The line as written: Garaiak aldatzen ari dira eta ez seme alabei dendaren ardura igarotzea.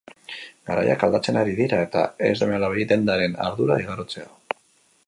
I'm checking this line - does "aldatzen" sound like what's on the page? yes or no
yes